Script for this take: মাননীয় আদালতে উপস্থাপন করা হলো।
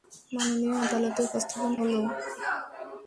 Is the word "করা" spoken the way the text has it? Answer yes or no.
no